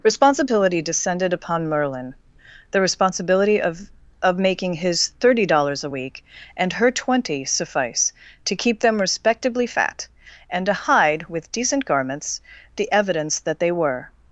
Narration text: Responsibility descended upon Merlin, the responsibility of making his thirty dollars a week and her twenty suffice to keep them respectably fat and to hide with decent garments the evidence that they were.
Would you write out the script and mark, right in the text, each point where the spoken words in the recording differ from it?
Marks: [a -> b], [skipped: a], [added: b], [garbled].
Responsibility descended upon Merlin, the responsibility of [added: of] making his thirty dollars a week and her twenty suffice to keep them respectably fat and to hide with decent garments the evidence that they were.